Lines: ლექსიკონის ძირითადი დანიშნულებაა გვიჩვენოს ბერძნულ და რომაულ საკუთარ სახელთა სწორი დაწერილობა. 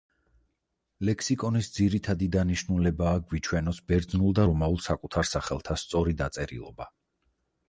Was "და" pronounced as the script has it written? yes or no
yes